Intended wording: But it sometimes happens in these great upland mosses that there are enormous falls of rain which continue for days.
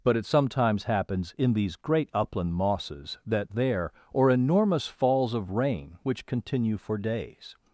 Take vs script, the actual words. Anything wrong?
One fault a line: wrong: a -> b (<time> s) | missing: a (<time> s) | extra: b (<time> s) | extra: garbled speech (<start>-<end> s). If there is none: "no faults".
wrong: are -> or (4.1 s)